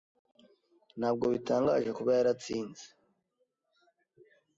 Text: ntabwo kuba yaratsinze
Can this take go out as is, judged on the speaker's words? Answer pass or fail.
fail